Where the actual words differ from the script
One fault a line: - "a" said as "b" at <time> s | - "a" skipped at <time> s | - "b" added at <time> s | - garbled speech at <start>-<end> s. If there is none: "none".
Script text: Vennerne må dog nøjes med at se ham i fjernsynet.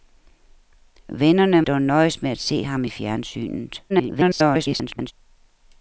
- "må" skipped at 1.6 s
- garbled speech at 3.9-5.1 s